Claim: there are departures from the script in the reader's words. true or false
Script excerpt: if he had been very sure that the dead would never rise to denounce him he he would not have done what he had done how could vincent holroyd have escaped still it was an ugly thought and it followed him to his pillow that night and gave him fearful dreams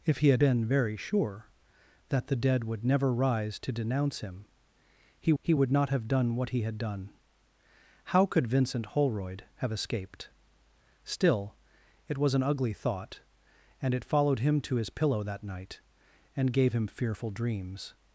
false